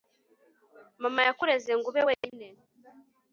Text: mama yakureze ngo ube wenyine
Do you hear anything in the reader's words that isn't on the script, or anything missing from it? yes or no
no